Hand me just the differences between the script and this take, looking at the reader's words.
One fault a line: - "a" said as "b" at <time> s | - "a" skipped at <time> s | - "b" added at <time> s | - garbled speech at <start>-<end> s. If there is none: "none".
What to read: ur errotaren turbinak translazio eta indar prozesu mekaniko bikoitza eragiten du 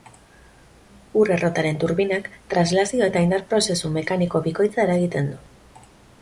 none